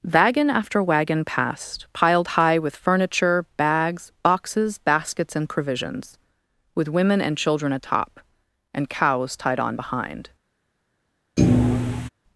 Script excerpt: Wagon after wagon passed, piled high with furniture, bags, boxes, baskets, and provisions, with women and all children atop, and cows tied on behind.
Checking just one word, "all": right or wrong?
wrong